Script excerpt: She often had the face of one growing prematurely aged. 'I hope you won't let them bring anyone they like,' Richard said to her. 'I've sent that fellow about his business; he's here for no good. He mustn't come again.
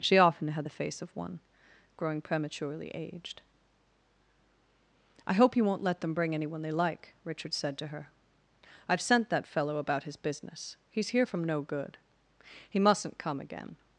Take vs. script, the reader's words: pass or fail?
fail